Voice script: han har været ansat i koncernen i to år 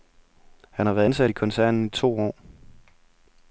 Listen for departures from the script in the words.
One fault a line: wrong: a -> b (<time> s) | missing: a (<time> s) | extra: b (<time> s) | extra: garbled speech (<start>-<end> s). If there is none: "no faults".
no faults